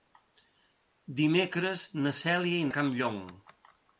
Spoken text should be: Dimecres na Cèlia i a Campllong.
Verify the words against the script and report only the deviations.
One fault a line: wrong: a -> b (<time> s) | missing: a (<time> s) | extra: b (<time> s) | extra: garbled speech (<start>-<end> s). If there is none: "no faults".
no faults